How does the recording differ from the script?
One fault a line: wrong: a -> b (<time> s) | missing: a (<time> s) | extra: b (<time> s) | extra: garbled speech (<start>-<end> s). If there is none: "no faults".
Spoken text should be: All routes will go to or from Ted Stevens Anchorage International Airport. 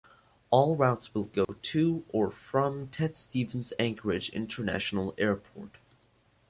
no faults